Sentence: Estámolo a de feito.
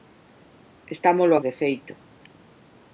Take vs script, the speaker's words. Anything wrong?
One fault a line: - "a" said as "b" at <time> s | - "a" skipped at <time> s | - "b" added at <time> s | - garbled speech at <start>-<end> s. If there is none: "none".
none